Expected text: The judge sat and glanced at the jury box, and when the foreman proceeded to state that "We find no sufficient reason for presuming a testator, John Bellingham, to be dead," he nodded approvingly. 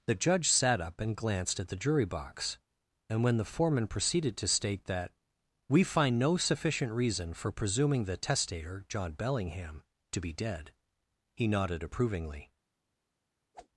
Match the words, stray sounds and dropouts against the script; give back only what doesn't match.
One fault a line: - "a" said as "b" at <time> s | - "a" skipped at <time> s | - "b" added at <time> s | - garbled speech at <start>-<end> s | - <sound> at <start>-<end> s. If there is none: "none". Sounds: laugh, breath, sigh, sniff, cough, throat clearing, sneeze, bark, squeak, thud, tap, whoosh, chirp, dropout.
- "up" added at 0.8 s
- "a" said as "the" at 8.1 s
- whoosh at 13.5-13.7 s